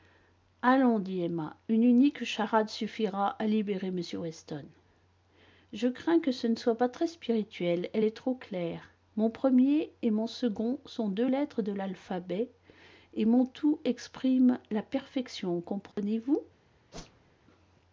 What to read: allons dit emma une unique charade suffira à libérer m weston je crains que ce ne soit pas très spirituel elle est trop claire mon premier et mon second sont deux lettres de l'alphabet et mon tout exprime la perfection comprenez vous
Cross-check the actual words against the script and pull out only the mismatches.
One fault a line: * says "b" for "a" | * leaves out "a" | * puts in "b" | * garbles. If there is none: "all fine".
all fine